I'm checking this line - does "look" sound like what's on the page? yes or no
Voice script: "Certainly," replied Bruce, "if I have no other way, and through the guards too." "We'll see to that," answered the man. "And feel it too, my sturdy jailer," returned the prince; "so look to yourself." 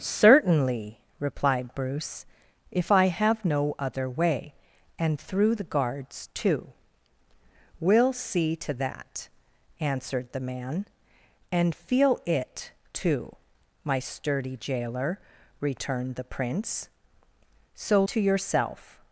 no